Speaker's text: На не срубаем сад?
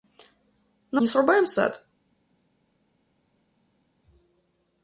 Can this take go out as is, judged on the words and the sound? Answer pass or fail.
pass